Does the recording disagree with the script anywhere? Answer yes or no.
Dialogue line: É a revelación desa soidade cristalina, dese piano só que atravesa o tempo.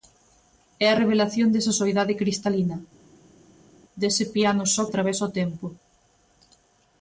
yes